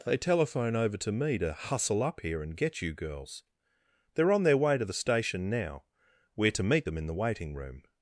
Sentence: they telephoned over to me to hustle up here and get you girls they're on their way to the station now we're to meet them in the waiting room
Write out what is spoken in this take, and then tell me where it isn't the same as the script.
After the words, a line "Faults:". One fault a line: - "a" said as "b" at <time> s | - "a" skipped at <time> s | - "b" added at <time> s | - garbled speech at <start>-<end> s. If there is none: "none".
they telephone over to me to hustle up here and get you girls they're on their way to the station now we're to meet them in the waiting room
Faults:
- "telephoned" said as "telephone" at 0.2 s